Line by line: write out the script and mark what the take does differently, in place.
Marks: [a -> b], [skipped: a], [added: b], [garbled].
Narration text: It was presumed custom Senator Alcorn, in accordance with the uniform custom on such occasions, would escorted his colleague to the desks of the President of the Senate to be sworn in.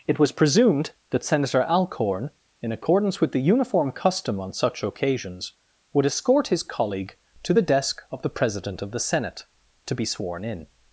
It was presumed [custom -> that] Senator Alcorn, in accordance with the uniform custom on such occasions, would [escorted -> escort] his colleague to the [desks -> desk] of the President of the Senate to be sworn in.